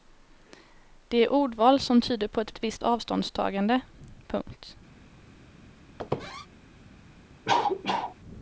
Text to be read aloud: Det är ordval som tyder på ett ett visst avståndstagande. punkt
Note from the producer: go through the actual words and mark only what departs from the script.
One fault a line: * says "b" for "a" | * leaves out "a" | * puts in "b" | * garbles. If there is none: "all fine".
all fine